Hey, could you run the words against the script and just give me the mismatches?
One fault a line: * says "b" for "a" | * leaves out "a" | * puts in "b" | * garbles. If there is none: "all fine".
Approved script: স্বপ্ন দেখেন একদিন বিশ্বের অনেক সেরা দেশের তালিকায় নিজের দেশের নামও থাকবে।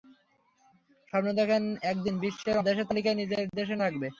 * leaves out "অনেক সেরা"
* leaves out "নামও"